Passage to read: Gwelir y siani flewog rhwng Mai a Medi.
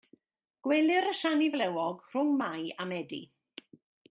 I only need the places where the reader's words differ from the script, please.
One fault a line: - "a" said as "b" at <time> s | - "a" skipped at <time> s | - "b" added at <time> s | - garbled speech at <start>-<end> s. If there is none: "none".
none